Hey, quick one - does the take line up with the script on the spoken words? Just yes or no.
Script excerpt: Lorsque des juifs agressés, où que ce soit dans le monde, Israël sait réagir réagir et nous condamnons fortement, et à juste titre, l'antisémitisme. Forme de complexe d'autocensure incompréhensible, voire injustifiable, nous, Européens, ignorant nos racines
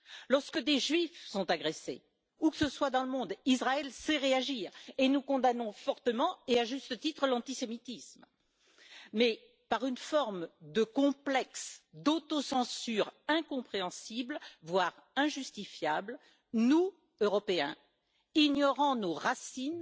no